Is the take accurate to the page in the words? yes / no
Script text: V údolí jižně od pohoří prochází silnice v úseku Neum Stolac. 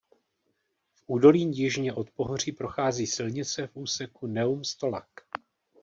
yes